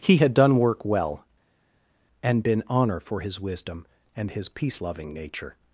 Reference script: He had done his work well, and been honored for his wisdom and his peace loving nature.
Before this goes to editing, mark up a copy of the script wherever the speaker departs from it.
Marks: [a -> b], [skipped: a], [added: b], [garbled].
He had done [skipped: his] work well, and been [honored -> honor] for his wisdom and his peace loving nature.